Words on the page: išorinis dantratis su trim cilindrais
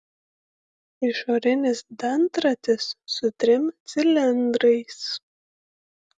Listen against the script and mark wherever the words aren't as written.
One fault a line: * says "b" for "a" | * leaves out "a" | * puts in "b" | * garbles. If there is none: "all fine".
all fine